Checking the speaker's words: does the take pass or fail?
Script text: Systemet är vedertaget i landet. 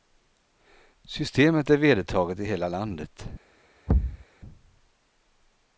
fail